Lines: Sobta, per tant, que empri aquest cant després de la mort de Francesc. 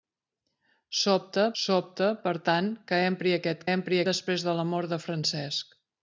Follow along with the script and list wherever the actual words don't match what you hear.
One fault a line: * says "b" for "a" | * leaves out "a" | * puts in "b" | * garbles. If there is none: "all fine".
* puts in "sobta"
* says "empri" for "cant"